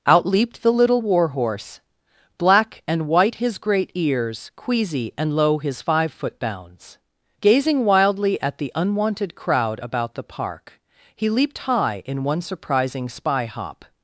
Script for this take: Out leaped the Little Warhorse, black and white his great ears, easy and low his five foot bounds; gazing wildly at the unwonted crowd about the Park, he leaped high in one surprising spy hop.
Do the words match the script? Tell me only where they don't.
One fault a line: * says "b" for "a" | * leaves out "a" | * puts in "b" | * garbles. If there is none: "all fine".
* says "queasy" for "easy"